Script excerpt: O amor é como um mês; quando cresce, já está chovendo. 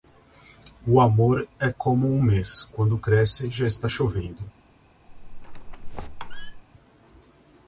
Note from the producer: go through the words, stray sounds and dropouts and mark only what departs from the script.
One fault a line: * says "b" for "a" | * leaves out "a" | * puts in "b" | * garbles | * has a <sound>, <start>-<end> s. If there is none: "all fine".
* has a squeak, 5.1-6.6 s